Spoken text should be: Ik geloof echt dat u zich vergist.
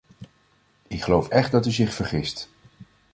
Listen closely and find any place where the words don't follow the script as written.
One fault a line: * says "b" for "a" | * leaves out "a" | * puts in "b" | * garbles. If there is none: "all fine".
all fine